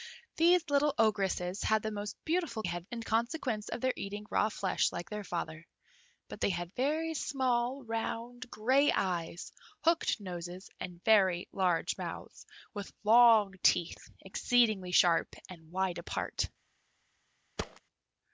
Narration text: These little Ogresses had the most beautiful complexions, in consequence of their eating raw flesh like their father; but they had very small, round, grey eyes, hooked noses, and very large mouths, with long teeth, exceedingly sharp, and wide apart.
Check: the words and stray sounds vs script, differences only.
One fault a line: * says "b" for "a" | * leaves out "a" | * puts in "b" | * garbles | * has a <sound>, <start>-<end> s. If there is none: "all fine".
* says "had" for "complexions"
* has a thud, 17.6-17.8 s